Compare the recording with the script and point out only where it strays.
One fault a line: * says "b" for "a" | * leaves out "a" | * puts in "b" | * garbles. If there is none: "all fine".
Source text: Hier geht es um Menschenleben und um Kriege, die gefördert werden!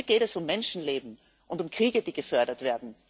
all fine